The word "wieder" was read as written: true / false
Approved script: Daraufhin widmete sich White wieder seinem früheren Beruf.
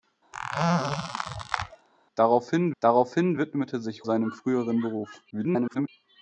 false